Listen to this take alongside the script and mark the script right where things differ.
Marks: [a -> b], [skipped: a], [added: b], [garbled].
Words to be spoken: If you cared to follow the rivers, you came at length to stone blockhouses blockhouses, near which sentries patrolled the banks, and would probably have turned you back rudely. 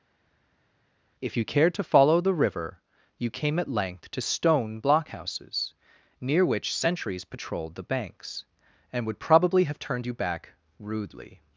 If you cared to follow the [rivers, -> river] you came at length to stone blockhouses [skipped: blockhouses,] near which sentries patrolled the banks, and would probably have turned you back rudely.